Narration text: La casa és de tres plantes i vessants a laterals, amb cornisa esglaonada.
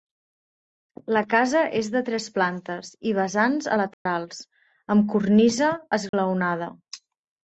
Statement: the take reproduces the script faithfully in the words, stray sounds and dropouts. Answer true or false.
false